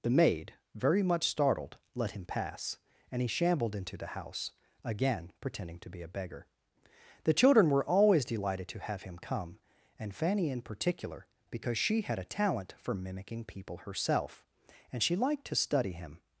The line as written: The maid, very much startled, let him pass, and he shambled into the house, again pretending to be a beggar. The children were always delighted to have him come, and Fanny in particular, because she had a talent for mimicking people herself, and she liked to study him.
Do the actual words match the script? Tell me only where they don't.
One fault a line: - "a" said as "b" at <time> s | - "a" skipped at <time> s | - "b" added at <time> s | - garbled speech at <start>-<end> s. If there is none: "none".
none